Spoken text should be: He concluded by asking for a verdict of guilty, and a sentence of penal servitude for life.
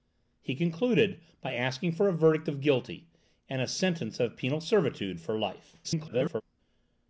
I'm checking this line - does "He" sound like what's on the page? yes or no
yes